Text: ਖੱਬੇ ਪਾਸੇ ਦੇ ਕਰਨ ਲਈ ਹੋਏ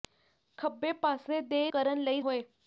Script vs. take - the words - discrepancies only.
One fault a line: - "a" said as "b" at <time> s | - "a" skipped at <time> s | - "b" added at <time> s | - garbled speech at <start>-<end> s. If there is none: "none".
none